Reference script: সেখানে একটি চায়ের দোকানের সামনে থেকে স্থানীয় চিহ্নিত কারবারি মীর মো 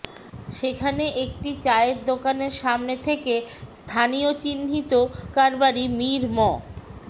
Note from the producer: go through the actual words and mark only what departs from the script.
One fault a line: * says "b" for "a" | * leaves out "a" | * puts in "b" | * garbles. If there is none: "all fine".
all fine